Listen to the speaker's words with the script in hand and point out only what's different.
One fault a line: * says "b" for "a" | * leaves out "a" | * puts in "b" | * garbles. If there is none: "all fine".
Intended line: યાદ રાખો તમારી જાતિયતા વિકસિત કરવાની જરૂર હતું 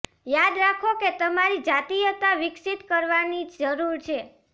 * puts in "કે"
* says "છે" for "હતું"